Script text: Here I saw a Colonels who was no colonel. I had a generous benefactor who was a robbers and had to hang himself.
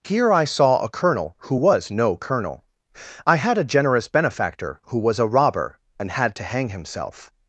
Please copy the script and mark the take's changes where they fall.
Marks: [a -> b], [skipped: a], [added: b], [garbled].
Here I saw a [Colonels -> Colonel] who was no colonel. I had a generous benefactor who was a [robbers -> robber] and had to hang himself.